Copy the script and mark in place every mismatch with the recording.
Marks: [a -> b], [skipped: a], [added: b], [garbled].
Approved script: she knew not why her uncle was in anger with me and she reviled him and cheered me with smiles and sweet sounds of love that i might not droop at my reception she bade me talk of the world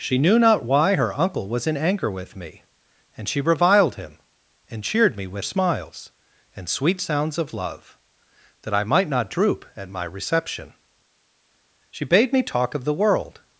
she knew not why her uncle was in anger with me and she reviled him and cheered me with smiles and sweet sounds of love that i might not droop at my reception she bade me talk of the world